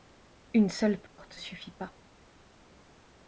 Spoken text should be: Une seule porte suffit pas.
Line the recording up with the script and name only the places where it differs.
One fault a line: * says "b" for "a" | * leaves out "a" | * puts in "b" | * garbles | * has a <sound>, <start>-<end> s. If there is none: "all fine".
* has a dropout, 1.1-1.2 s